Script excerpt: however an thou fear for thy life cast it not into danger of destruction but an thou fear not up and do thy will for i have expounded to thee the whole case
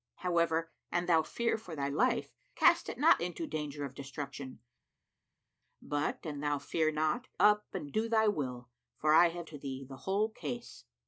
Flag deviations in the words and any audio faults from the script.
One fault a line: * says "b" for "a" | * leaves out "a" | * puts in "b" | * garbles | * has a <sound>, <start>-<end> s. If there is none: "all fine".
* leaves out "expounded"